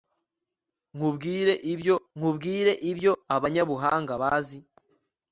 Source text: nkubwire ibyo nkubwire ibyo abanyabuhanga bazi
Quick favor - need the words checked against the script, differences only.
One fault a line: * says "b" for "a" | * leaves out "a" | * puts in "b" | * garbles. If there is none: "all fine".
all fine